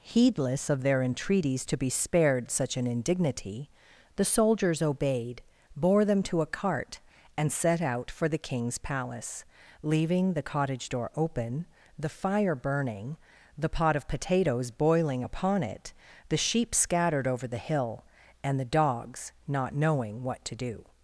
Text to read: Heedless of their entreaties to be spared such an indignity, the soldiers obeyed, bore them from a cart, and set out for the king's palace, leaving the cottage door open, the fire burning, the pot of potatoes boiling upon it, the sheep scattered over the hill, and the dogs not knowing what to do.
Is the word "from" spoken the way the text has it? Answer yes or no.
no